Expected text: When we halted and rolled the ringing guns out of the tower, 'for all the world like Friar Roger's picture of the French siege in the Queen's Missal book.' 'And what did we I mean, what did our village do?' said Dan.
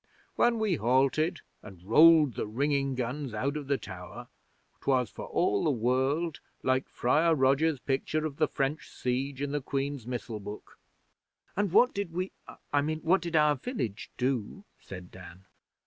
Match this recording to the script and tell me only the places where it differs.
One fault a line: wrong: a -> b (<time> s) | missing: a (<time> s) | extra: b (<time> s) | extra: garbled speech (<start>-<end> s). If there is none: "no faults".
extra: twas (4.8 s)